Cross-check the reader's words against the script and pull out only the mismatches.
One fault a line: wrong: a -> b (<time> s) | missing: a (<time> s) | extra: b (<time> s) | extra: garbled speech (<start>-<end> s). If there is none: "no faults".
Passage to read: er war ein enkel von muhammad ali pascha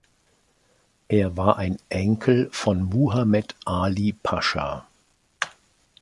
no faults